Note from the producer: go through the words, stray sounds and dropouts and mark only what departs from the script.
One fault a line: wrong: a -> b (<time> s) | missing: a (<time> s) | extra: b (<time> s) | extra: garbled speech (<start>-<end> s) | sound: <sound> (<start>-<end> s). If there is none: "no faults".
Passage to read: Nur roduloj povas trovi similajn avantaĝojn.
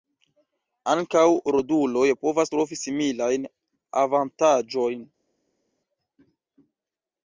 wrong: Nur -> Ankaŭ (0.9 s)